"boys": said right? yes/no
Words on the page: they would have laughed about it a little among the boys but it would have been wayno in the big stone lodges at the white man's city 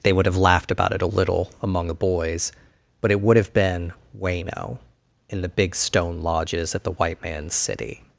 yes